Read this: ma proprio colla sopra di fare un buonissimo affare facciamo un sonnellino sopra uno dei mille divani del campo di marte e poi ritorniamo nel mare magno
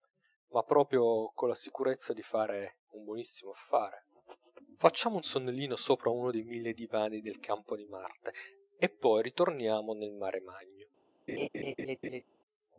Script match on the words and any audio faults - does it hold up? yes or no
no